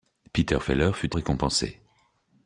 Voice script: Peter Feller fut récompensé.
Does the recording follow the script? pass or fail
pass